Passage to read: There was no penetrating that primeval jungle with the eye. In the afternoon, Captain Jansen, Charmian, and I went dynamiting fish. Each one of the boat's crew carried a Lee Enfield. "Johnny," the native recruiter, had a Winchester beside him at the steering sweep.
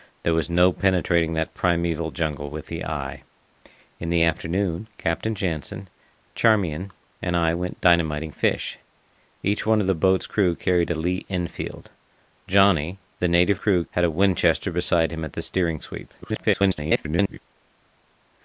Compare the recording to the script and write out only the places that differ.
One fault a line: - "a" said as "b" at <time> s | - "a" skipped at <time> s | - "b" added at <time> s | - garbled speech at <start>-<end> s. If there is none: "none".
- "recruiter" said as "crew" at 13.5 s
- garbled speech at 16.2-17.4 s